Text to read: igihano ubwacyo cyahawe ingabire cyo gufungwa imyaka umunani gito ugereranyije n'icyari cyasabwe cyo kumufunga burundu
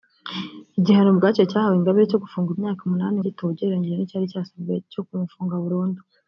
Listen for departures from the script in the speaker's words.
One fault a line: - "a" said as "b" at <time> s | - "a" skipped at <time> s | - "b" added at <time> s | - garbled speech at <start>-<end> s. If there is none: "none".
none